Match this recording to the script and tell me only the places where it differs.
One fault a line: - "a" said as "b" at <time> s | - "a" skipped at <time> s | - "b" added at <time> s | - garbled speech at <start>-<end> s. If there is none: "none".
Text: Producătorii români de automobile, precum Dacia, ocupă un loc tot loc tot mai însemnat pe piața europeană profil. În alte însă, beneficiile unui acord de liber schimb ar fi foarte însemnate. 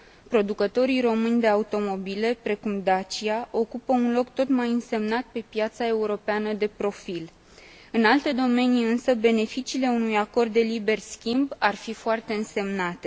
- "loc tot" skipped at 4.5 s
- "de" added at 6.5 s
- "domenii" added at 8.3 s